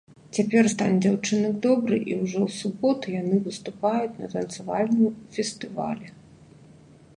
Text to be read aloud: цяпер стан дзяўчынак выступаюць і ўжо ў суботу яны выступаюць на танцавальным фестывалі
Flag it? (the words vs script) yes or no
yes